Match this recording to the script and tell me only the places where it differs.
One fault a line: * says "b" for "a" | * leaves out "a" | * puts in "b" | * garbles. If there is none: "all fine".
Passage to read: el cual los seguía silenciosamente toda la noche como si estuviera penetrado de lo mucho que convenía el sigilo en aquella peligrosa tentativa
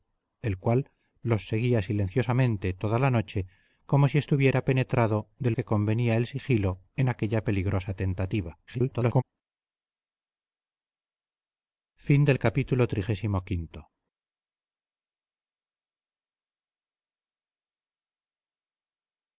* leaves out "lo mucho"
* garbles